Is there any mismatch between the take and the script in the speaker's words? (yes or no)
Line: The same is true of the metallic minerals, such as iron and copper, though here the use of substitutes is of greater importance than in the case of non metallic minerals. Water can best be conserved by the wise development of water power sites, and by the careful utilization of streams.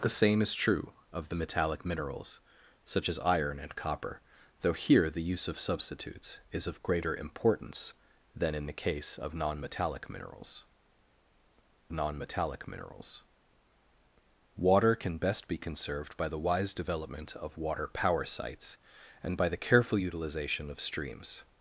yes